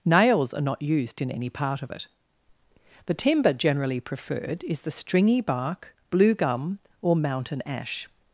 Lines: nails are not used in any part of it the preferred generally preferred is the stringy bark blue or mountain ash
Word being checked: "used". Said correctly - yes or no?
yes